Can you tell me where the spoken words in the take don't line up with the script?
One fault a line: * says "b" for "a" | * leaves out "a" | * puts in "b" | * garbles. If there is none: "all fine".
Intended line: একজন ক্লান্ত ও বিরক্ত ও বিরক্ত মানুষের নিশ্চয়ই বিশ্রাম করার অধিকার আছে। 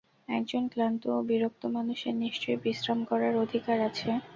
* leaves out "ও বিরক্ত"